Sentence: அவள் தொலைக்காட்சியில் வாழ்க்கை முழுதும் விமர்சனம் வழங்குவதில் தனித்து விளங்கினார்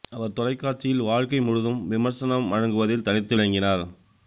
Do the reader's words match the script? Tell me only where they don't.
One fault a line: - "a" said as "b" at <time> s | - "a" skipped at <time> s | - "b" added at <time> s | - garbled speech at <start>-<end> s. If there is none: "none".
- "அவள்" said as "அவர்" at 0.1 s